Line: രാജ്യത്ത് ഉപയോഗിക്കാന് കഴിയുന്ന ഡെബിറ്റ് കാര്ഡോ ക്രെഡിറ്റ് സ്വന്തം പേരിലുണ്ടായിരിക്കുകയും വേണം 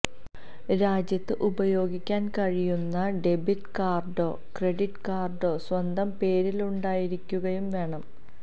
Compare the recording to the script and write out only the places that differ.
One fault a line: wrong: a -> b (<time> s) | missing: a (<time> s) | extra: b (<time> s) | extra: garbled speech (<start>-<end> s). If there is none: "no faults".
extra: കാര്ഡോ (5.1 s)